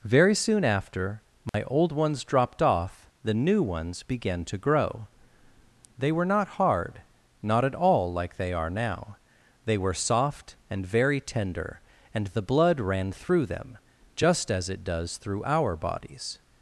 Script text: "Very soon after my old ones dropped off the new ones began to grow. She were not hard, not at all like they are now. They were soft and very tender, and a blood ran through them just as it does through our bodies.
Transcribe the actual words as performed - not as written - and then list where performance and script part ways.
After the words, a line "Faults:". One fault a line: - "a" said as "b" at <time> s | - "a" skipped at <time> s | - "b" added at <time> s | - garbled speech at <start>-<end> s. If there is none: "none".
"Very soon after my old ones dropped off the new ones began to grow. They were not hard, not at all like they are now. They were soft and very tender, and the blood ran through them just as it does through our bodies.
Faults:
- "She" said as "They" at 6.0 s
- "a" said as "the" at 12.3 s